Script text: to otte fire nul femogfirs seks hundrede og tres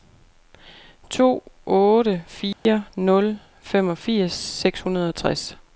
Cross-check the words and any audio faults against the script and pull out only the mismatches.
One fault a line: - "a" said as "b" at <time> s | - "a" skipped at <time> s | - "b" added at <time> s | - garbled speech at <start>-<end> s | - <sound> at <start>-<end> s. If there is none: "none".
- dropout at 2.5-2.7 s